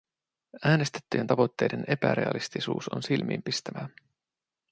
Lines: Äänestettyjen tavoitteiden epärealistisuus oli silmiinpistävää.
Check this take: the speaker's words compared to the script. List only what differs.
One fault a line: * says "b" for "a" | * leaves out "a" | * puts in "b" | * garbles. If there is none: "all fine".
* says "on" for "oli"